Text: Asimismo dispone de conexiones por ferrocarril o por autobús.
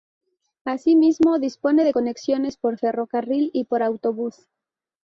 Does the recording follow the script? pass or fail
fail